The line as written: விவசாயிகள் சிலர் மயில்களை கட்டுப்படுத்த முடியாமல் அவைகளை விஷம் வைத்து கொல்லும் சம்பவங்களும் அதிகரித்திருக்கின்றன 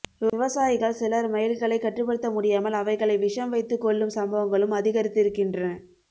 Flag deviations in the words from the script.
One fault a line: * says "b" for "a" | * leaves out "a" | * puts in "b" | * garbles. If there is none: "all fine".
all fine